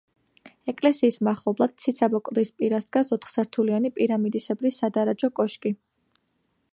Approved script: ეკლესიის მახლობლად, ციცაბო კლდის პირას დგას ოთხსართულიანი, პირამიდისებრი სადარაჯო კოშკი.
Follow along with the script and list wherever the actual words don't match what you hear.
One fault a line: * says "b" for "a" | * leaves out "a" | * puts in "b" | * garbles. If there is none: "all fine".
all fine